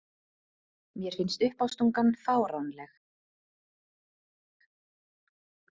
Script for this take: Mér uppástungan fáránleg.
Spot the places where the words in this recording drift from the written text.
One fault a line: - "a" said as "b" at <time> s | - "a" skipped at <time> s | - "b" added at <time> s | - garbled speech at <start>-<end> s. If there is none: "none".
- "finnst" added at 1.1 s